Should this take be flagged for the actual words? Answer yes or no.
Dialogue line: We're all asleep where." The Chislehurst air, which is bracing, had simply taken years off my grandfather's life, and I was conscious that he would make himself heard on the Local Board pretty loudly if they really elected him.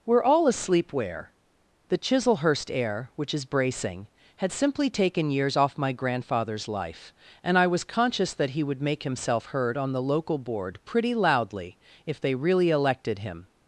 no